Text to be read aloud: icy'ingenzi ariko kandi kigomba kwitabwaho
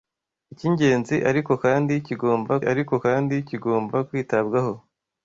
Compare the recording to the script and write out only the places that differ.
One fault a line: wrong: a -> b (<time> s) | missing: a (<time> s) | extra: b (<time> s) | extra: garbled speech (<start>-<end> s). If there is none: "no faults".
extra: ariko kandi kigomba (2.7 s)